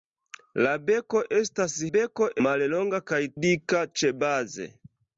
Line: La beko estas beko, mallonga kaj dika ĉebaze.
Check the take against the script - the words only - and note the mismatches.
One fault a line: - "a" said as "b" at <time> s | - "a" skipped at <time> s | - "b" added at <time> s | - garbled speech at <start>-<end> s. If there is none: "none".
none